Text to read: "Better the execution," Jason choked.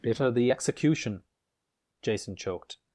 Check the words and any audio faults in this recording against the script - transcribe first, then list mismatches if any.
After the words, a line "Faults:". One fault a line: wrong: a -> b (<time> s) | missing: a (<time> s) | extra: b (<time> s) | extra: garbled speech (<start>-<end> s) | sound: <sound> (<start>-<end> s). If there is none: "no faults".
"Bitter the execution," Jason choked.
Faults:
wrong: Better -> Bitter (0.0 s)